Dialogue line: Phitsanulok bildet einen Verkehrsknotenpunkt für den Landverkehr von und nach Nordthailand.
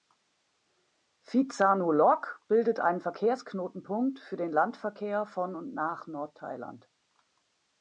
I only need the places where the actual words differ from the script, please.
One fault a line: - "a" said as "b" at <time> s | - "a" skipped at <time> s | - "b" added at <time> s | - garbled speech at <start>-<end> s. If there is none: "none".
none